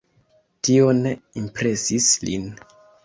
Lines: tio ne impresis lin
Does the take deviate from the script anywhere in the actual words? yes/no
no